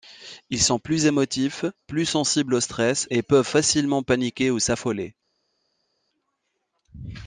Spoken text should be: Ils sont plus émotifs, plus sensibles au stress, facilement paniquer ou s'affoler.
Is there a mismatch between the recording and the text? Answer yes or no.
yes